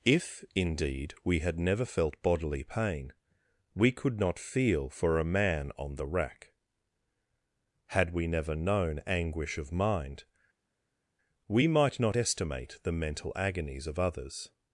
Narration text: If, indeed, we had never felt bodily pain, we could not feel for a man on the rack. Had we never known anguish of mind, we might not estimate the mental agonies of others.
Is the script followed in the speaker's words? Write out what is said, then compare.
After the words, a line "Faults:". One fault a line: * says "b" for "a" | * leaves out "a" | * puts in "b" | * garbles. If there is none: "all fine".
If, indeed, we had never felt bodily pain, we could not feel for a man on the rack. Had we never known anguish of mind, we might not estimate the mental agonies of others.
Faults:
all fine